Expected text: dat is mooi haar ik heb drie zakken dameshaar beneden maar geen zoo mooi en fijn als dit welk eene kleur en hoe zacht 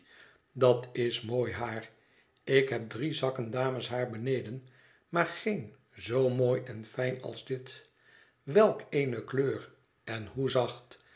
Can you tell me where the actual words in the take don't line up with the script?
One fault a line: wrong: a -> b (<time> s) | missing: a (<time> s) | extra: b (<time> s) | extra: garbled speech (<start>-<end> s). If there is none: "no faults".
no faults